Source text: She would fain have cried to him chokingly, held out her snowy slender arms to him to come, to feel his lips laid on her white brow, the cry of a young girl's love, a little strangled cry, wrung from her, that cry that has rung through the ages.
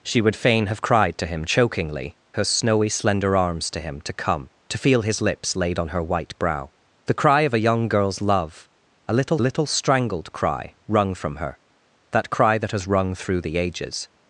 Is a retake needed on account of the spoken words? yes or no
yes